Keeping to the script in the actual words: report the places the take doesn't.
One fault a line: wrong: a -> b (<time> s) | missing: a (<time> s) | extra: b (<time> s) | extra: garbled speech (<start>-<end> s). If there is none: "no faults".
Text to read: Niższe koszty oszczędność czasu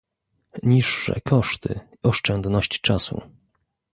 no faults